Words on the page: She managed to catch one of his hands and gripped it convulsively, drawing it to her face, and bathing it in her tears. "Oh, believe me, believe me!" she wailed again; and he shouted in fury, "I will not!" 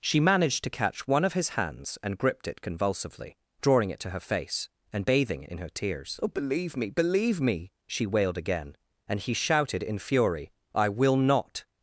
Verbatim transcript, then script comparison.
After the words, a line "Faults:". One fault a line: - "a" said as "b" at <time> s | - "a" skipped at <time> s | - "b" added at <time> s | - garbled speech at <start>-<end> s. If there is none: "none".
She managed to catch one of his hands and gripped it convulsively, drawing it to her face, and bathing in her tears. "Oh, believe me, believe me!" she wailed again; and he shouted in fury, "I will not!"
Faults:
- "it" skipped at 5.4 s